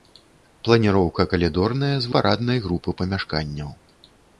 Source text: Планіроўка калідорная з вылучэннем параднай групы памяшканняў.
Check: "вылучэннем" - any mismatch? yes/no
yes